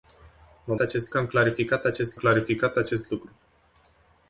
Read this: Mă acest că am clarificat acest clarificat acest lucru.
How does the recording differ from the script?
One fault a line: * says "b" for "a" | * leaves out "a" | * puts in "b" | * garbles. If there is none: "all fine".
all fine